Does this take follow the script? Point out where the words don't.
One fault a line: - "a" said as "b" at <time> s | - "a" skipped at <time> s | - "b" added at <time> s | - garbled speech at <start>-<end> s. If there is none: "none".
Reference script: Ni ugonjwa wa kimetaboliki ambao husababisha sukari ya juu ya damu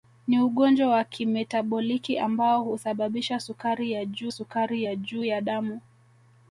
- "sukari ya juu" added at 4.3 s